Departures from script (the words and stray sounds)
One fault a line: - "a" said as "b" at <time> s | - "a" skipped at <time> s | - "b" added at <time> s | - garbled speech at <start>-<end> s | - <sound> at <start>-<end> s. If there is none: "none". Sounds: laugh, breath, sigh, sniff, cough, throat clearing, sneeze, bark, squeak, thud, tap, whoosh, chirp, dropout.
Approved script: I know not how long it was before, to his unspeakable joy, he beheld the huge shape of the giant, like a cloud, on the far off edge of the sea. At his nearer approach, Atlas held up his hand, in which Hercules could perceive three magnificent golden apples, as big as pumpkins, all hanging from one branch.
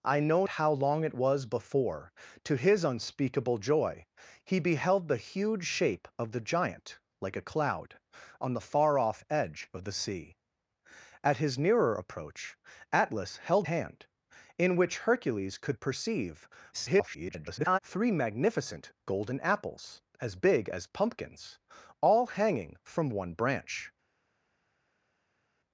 - "not" skipped at 0.5 s
- "up his" skipped at 13.7 s
- garbled speech at 16.7-17.8 s